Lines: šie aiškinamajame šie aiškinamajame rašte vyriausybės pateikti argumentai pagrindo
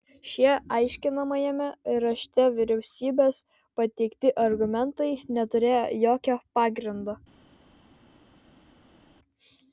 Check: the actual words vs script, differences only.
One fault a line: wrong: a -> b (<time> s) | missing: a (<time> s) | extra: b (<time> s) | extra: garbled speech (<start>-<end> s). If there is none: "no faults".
missing: šie aiškinamajame (1.7 s)
extra: neturėjo jokio (5.4 s)